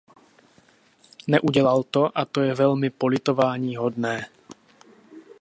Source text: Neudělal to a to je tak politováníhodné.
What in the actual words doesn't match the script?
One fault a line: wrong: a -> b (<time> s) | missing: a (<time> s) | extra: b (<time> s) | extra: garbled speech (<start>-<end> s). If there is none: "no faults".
wrong: tak -> velmi (2.5 s)